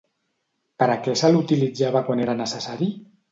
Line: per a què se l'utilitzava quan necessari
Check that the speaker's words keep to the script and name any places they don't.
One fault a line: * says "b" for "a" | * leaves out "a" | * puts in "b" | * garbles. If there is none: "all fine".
* puts in "era"